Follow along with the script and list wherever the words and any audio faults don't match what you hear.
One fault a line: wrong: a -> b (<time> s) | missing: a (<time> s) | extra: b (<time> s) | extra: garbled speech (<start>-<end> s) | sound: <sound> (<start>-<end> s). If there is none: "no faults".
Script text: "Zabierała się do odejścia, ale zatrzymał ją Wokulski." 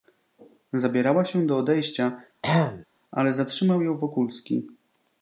sound: throat clearing (2.4-2.9 s)